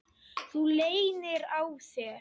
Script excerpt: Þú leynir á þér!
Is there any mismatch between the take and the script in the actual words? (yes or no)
no